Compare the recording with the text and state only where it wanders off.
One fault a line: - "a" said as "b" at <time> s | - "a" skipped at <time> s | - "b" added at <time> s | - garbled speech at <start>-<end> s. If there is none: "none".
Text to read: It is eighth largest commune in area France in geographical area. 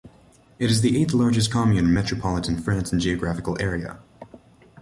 - "the" added at 0.8 s
- "area" said as "metropolitan" at 1.9 s